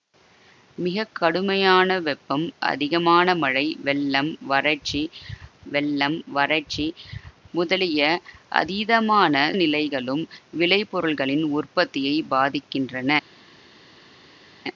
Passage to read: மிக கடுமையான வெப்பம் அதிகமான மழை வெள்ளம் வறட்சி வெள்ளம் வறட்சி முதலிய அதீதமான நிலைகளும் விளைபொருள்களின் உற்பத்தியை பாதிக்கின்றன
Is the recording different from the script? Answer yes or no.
no